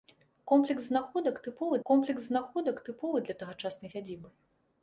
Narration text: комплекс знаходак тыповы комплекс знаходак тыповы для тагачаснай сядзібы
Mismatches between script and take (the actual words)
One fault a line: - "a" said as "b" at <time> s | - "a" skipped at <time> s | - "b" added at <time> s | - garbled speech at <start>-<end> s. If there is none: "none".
none